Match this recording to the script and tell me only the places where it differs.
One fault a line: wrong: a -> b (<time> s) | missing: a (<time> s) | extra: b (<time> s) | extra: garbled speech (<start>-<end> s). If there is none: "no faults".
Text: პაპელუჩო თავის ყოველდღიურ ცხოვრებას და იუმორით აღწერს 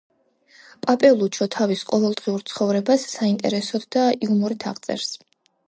extra: საინტერესოდ (3.1 s)